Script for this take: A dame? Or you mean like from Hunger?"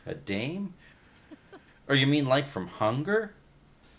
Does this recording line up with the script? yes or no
yes